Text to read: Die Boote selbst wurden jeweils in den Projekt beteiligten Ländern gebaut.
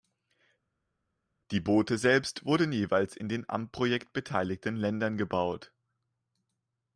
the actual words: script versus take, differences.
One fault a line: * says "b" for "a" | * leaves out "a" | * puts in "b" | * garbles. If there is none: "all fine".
* puts in "am"